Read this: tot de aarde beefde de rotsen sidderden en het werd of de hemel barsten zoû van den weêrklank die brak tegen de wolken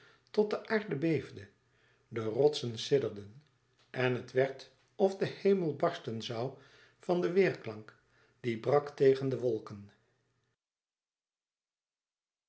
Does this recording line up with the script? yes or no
yes